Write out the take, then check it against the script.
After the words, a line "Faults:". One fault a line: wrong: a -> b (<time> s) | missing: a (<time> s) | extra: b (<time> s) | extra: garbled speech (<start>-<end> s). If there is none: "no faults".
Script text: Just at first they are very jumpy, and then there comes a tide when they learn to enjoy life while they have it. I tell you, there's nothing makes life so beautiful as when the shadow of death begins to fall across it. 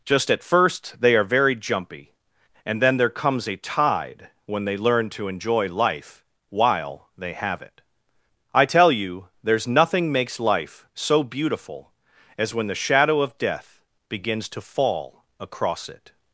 Just at first they are very jumpy, and then there comes a tide when they learn to enjoy life while they have it. I tell you, there's nothing makes life so beautiful as when the shadow of death begins to fall across it.
Faults:
no faults